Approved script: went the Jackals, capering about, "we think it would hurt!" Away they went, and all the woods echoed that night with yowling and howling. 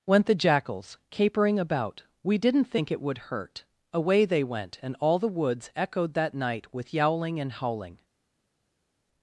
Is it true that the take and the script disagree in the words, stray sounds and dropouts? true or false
true